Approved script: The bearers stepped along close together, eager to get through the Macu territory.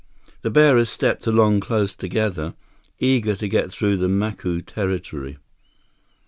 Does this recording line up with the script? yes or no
yes